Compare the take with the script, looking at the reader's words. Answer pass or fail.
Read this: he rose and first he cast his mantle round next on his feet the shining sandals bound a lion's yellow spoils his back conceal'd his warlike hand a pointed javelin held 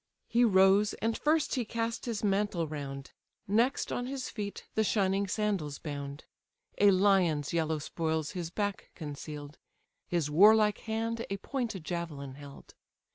pass